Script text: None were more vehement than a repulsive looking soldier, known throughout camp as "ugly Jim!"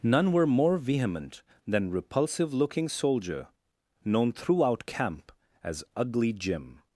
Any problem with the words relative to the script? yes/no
yes